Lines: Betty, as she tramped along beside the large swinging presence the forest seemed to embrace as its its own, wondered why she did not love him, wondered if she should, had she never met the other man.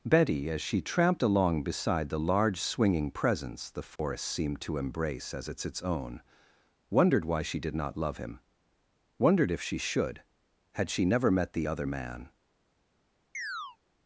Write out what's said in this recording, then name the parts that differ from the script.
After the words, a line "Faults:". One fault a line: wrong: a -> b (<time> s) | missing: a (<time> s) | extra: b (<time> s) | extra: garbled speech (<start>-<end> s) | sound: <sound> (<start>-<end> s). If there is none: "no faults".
Betty, as she tramped along beside the large swinging presence the forest seemed to embrace as its its own, wondered why she did not love him, wondered if she should, had she never met the other man.
Faults:
sound: dropout (4.0-4.0 s)
sound: chirp (13.3-13.8 s)